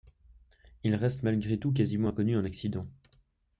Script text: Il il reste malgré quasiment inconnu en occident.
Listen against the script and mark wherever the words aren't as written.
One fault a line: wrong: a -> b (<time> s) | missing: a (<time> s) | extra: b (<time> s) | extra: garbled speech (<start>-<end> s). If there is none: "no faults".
missing: il (0.9 s)
extra: tout (1.6 s)